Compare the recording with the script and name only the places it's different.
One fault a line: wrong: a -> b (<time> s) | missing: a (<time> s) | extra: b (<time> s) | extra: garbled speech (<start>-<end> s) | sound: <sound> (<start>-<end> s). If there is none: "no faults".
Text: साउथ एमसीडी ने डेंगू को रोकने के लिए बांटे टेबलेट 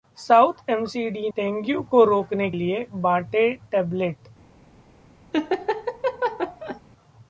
missing: ने (1.3 s)
missing: के (2.5 s)
sound: laugh (5.3-6.8 s)